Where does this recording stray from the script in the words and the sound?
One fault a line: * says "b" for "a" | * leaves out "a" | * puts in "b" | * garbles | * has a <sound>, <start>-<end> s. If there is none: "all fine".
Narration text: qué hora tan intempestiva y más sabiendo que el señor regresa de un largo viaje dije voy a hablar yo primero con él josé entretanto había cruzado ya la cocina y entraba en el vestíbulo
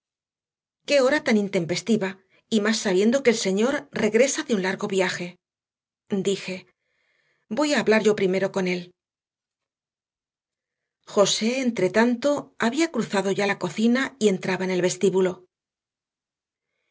all fine